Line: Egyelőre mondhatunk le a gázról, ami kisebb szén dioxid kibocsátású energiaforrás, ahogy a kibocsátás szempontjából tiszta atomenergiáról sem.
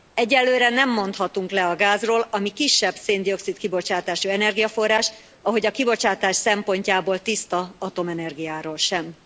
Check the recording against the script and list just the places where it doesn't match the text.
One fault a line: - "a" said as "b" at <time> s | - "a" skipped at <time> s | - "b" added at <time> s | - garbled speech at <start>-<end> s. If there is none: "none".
- "nem" added at 0.7 s